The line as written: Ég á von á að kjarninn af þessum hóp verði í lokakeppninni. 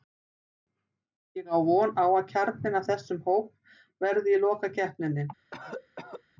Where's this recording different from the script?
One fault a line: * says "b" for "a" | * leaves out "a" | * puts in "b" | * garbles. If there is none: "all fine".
all fine